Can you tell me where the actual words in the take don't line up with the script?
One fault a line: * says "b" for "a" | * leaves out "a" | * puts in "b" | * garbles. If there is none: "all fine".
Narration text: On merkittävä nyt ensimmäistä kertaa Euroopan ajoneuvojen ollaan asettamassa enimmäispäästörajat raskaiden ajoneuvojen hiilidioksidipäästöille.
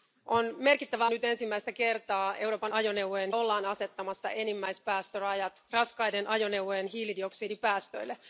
all fine